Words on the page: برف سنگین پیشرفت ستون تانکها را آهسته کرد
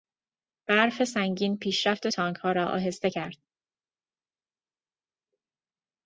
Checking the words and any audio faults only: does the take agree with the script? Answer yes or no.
no